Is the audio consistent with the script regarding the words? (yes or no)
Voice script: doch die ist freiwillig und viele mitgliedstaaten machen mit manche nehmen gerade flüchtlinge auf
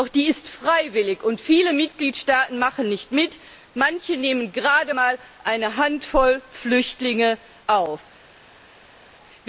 no